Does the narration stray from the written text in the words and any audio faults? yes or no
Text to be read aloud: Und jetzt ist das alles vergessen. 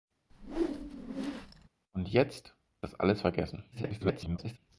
yes